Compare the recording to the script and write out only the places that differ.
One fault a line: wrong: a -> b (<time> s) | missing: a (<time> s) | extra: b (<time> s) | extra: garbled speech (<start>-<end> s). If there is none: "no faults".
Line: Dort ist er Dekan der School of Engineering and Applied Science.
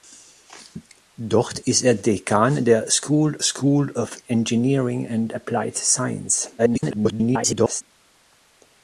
extra: School (3.4 s)
extra: garbled speech (6.6-7.8 s)